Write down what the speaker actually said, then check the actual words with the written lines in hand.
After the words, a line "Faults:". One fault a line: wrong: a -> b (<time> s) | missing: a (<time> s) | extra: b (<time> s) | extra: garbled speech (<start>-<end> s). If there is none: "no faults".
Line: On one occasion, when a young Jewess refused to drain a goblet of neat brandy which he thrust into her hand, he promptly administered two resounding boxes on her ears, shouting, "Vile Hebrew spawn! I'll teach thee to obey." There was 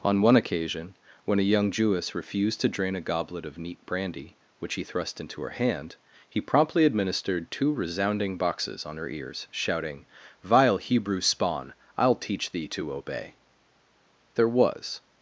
On one occasion, when a young Jewess refused to drain a goblet of neat brandy which he thrust into her hand, he promptly administered two resounding boxes on her ears, shouting, "Vile Hebrew spawn! I'll teach thee to obey." There was
Faults:
no faults